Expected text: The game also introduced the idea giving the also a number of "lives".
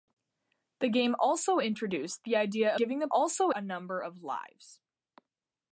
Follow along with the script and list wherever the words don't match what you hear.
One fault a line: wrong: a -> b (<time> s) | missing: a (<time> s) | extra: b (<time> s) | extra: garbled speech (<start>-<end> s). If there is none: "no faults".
no faults